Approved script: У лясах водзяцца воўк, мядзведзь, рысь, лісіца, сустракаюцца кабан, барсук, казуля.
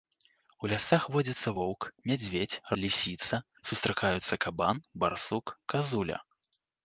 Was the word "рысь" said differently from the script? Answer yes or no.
yes